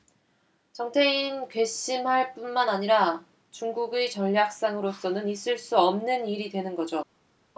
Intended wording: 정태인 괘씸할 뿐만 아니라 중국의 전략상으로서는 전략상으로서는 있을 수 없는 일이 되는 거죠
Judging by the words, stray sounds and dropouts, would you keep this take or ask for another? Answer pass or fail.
fail